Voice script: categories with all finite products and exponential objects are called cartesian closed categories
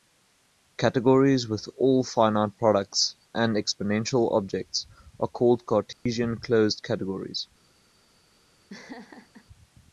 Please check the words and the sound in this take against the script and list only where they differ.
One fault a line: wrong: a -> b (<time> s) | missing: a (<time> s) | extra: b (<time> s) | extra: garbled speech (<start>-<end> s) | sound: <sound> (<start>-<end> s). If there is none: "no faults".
sound: dropout (5.9-6.1 s)
sound: laugh (8.7-9.5 s)